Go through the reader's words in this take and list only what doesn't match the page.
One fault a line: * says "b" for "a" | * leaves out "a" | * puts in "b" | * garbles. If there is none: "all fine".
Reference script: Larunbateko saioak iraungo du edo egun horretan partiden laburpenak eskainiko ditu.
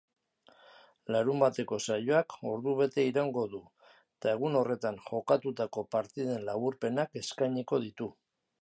* puts in "ordubete"
* says "eta" for "edo"
* puts in "jokatutako"